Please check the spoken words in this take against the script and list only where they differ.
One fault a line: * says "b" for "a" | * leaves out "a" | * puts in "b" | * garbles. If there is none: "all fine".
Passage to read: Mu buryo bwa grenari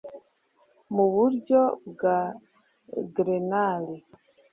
all fine